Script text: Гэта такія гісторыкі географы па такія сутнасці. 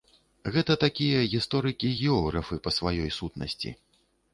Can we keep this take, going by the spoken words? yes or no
no